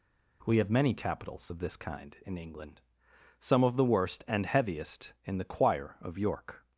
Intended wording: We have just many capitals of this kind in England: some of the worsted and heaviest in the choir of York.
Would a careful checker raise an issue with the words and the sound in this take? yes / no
yes